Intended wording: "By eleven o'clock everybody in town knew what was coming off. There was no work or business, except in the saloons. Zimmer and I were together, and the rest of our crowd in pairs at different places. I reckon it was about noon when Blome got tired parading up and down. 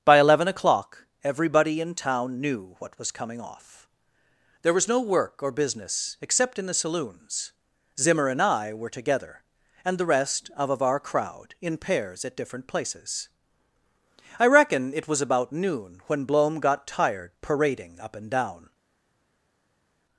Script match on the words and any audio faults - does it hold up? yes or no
no